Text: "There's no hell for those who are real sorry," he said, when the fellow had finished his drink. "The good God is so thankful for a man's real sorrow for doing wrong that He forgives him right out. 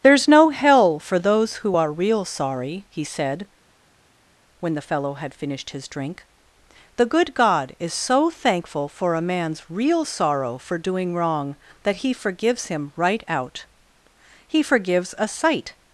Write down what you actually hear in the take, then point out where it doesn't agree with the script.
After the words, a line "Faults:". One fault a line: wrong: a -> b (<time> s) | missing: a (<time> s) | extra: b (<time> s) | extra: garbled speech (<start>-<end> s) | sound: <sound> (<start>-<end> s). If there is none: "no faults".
"There's no hell for those who are real sorry," he said, when the fellow had finished his drink. "The good God is so thankful for a man's real sorrow for doing wrong that He forgives him right out. He forgives a sight
Faults:
extra: He forgives a sight (14.5 s)